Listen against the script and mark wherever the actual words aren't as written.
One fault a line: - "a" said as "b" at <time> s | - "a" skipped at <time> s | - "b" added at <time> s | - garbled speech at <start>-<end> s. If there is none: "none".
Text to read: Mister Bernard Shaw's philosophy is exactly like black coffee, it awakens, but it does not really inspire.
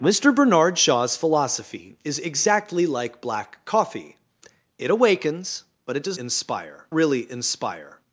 - "not" said as "inspire" at 6.2 s